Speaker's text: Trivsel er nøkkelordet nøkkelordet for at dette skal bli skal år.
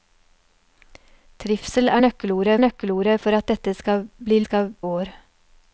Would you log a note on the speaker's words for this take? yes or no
no